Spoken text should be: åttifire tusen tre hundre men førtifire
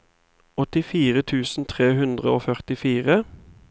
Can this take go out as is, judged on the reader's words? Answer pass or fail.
fail